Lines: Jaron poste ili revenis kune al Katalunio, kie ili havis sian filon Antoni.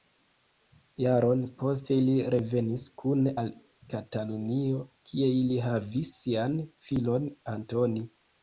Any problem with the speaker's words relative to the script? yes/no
no